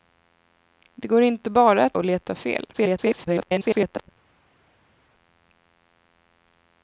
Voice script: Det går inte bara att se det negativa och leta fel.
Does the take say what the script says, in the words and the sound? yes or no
no